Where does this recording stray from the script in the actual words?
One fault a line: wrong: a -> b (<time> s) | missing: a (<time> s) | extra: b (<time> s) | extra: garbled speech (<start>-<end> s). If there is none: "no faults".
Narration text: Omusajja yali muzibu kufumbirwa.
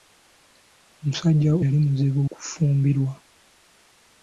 no faults